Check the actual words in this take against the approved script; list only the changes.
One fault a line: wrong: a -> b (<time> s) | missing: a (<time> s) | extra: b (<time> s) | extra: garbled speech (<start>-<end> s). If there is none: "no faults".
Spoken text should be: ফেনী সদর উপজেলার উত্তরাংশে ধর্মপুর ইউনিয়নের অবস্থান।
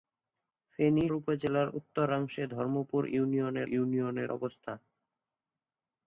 missing: সদর (1.1 s)
extra: ইউনিয়নের (3.7 s)